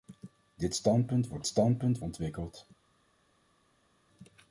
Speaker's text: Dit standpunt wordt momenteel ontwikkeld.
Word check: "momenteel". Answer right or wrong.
wrong